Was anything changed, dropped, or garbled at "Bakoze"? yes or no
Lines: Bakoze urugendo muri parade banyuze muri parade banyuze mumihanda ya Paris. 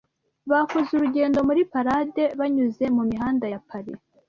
no